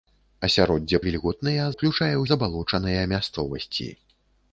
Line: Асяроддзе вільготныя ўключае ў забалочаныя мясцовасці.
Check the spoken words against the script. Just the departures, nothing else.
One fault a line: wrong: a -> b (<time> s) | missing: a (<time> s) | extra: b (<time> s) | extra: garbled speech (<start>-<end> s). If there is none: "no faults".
no faults